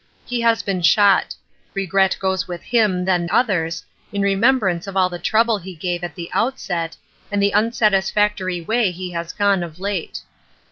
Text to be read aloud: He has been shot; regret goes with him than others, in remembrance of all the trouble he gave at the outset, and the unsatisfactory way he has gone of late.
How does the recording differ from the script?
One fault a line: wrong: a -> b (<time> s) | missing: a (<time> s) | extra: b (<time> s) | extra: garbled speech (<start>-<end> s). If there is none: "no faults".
no faults